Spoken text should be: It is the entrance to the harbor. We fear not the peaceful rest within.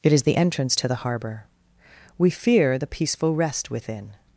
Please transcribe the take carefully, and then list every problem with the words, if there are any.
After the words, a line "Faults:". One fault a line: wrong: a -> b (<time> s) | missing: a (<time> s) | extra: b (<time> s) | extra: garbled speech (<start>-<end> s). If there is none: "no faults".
It is the entrance to the harbor. We fear the peaceful rest within.
Faults:
missing: not (2.8 s)